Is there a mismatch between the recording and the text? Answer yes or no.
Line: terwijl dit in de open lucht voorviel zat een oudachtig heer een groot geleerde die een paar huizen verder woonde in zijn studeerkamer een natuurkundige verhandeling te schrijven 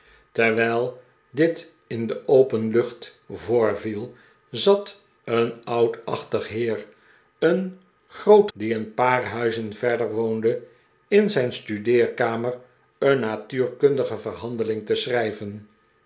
yes